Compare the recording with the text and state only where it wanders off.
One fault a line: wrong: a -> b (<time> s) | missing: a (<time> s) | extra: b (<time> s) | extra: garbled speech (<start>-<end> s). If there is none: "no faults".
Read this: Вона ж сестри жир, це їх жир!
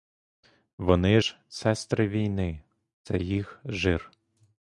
wrong: Вона -> Вони (0.8 s)
wrong: жир -> війни (2.1 s)